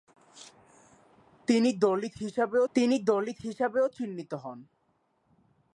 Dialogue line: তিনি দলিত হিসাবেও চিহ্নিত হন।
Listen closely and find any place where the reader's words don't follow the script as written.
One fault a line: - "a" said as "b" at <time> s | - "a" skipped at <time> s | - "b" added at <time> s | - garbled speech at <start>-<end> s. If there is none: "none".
- "তিনি দলিত হিসাবেও" added at 2.7 s